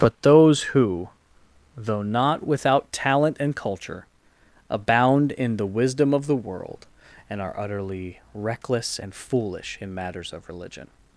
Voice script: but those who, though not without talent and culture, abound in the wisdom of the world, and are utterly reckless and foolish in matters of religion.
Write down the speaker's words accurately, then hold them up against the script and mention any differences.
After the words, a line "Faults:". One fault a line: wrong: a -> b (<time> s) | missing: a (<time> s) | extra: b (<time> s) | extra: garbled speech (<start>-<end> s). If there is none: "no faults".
but those who, though not without talent and culture, abound in the wisdom of the world, and are utterly reckless and foolish in matters of religion.
Faults:
no faults